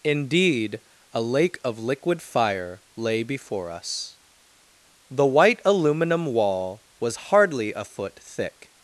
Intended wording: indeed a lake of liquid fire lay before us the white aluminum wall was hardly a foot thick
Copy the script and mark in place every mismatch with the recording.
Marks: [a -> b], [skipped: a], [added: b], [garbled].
indeed a lake of liquid fire lay before us the white aluminum wall was hardly a foot thick